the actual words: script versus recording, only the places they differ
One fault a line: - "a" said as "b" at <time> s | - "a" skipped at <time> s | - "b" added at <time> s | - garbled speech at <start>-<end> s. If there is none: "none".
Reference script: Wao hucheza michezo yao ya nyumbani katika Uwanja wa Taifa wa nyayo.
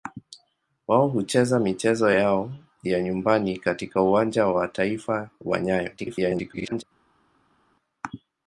- garbled speech at 6.0-6.8 s